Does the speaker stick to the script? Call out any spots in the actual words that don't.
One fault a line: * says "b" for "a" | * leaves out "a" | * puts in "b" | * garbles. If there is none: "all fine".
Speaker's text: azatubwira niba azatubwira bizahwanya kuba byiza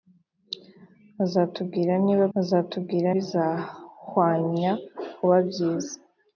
all fine